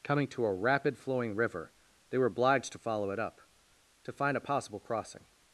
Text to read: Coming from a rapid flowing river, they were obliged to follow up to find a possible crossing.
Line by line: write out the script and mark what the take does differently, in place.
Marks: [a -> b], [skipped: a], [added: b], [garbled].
Coming [from -> to] a rapid flowing river, they were obliged to follow [added: it] up to find a possible crossing.